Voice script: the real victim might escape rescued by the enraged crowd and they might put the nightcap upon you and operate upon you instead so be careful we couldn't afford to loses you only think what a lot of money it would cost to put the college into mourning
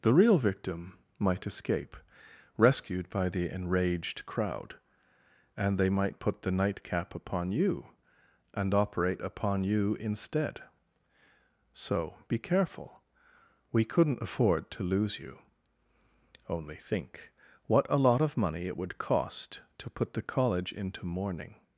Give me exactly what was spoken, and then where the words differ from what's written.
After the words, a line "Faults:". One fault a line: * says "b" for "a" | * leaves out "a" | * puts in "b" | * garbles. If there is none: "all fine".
the real victim might escape rescued by the enraged crowd and they might put the nightcap upon you and operate upon you instead so be careful we couldn't afford to lose you only think what a lot of money it would cost to put the college into mourning
Faults:
* says "lose" for "loses"